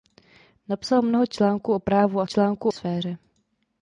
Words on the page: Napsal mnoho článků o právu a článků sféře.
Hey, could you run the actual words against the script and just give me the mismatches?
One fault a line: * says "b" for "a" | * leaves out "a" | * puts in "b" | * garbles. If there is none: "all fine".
all fine